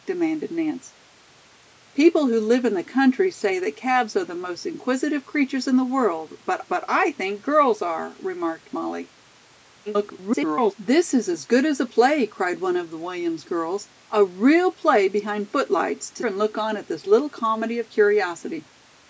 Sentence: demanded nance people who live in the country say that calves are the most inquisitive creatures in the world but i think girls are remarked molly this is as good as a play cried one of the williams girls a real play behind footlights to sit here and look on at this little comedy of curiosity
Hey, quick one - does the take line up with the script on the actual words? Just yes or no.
no